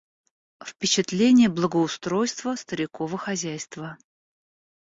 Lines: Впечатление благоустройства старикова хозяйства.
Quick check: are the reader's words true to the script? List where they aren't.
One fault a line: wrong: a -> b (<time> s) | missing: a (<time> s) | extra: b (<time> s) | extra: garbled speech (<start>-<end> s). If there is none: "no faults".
no faults